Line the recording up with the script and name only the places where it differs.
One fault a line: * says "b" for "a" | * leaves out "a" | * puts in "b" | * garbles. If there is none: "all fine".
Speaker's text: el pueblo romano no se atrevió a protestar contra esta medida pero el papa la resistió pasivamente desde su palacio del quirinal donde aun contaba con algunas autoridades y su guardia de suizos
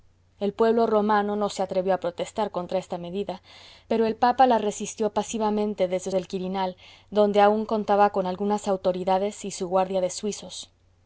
* leaves out "su palacio"